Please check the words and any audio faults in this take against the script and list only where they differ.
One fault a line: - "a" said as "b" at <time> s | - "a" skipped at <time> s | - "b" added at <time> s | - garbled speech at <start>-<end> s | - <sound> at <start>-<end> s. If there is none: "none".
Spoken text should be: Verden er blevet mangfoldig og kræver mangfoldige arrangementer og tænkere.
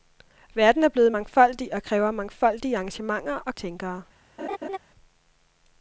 - laugh at 4.4-4.8 s